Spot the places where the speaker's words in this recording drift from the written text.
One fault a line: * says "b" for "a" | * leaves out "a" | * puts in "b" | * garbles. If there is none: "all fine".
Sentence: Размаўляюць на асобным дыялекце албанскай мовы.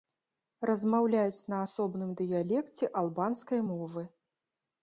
all fine